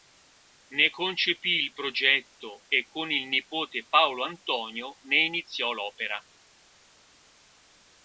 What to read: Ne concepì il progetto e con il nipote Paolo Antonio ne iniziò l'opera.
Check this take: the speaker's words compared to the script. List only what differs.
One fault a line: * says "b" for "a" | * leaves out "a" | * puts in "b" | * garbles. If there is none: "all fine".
all fine